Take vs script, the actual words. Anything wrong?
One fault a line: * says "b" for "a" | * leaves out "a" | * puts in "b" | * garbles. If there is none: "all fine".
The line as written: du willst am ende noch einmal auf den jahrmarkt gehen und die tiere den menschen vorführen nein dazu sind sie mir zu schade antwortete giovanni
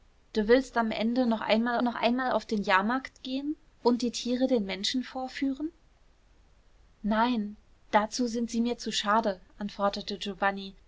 * puts in "noch einmal"